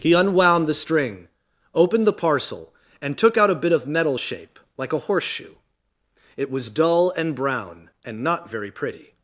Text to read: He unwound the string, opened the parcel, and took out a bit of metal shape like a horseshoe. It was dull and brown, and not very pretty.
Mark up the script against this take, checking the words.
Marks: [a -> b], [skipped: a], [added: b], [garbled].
He unwound the string, opened the parcel, and took out a bit of metal shape like a horseshoe. It was dull and brown, and not very pretty.